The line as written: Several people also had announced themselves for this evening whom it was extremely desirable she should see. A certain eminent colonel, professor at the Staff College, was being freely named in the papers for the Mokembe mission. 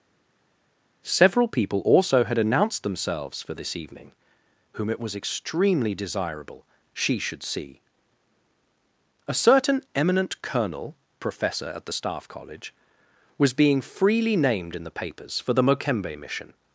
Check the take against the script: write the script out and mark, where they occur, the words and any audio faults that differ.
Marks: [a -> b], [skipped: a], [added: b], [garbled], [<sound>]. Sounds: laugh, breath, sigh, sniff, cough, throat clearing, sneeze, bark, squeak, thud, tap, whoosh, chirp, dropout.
Several people also had announced themselves for this evening whom it was extremely desirable she should see. A certain eminent colonel, professor at the Staff College, was being freely named in the papers for the Mokembe mission.